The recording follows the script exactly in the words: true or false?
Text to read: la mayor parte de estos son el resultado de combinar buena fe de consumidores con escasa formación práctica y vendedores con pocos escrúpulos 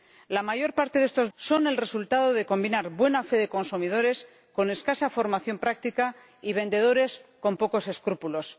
true